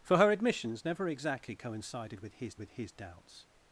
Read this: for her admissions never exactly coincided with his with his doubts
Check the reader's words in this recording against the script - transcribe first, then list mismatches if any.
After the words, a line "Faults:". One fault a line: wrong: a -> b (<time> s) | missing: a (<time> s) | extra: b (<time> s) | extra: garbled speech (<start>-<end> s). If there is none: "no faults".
for her admissions never exactly coincided with his with his doubts
Faults:
no faults